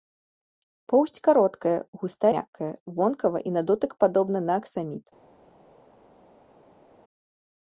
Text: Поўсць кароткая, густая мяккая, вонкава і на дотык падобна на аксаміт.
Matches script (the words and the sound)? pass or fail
pass